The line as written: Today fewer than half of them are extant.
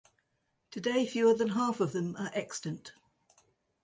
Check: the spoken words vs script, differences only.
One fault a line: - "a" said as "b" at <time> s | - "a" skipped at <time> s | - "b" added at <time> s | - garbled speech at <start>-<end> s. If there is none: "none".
none